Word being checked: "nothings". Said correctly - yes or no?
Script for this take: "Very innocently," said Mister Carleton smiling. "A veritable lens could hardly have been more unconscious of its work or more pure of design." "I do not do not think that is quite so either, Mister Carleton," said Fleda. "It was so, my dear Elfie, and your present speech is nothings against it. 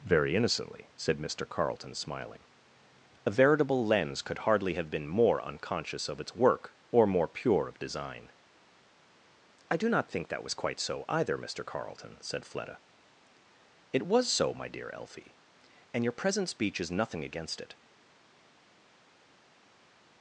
no